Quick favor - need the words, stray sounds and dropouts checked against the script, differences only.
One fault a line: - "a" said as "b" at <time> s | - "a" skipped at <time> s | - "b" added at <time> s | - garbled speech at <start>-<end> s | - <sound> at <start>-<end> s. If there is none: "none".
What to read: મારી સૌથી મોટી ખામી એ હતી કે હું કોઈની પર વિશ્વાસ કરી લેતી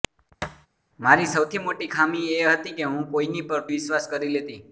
- thud at 0.4-0.7 s